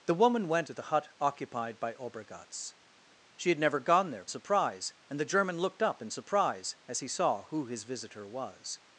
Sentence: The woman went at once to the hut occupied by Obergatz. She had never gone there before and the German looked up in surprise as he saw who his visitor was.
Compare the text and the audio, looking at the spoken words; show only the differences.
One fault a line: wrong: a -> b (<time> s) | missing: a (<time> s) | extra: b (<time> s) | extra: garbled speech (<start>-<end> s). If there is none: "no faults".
missing: at once (0.7 s)
wrong: before -> surprise (4.3 s)